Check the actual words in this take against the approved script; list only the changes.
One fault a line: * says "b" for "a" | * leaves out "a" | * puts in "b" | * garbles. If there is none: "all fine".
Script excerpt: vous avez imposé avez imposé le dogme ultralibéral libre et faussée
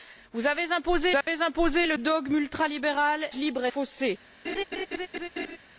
all fine